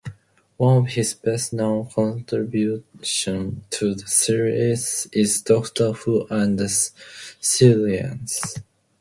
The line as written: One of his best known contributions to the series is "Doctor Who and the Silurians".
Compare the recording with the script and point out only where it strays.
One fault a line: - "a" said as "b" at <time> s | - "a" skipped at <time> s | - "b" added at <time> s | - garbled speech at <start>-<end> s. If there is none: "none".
none